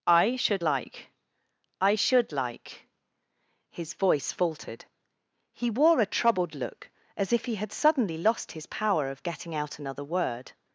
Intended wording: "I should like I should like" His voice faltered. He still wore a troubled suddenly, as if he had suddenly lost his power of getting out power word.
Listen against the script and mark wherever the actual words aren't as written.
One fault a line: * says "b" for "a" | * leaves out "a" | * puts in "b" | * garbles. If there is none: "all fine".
* leaves out "still"
* says "look" for "suddenly"
* says "another" for "power"